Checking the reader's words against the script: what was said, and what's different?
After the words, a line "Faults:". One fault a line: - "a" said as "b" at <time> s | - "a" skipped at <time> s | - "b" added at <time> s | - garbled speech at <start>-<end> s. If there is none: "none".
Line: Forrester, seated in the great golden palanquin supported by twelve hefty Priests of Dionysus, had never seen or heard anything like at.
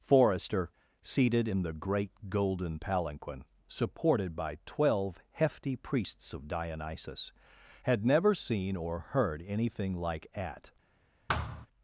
Forrester, seated in the great golden palanquin supported by twelve hefty Priests of Dionysus, had never seen or heard anything like at.
Faults:
none